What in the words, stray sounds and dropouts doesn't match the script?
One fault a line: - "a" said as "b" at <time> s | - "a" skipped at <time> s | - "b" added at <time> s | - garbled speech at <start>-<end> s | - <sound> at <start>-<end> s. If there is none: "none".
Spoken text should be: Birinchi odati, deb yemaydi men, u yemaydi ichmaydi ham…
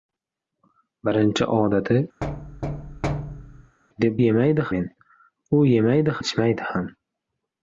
- thud at 2.2-3.8 s